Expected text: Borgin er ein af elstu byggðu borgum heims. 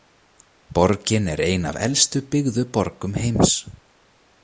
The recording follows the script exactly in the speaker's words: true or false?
true